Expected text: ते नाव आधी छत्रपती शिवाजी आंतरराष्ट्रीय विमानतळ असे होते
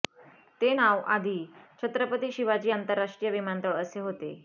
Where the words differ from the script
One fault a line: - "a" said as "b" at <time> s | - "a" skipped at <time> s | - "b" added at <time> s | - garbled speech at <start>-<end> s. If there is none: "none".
none